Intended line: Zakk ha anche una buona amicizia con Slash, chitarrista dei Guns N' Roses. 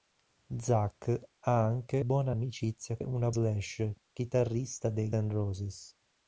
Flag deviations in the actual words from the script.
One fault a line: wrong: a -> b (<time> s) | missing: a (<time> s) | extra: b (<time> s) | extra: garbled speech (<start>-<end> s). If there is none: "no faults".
missing: una (2.0 s)
wrong: con -> una (3.0 s)
missing: Guns (5.1 s)